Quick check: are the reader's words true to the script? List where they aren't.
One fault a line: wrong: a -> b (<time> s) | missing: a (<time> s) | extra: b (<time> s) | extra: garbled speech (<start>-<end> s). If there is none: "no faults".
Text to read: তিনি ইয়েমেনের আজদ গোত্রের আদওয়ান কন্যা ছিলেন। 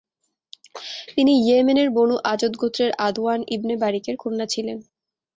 extra: বনু (1.9 s)
extra: ইবনে বারিকের (3.5 s)